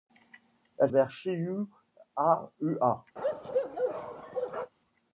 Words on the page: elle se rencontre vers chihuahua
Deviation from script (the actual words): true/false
true